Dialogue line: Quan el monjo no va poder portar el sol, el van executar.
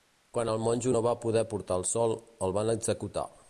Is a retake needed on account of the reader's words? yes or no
no